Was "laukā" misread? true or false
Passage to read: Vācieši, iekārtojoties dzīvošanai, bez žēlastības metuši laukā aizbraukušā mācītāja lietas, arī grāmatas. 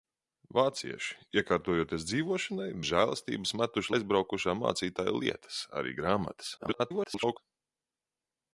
true